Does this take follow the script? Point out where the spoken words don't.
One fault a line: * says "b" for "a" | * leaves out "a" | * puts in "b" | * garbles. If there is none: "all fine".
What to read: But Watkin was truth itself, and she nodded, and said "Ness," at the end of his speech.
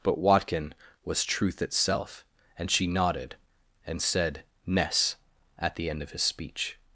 all fine